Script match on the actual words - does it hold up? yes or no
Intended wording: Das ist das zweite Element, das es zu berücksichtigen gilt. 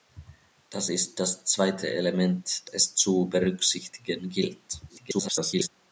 no